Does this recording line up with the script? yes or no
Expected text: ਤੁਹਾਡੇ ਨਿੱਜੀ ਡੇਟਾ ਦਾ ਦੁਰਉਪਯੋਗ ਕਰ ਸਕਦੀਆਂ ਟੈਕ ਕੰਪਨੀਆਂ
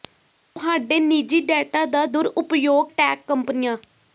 no